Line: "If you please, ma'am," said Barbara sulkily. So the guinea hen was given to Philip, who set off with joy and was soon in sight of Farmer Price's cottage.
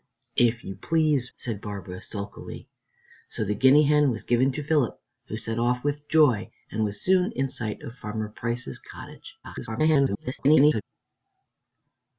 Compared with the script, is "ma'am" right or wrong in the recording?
wrong